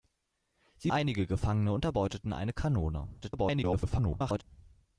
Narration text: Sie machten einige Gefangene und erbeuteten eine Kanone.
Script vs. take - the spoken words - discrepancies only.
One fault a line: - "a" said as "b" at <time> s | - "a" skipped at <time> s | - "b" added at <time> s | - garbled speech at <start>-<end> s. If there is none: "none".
- "machten" skipped at 0.9 s
- garbled speech at 3.2-4.4 s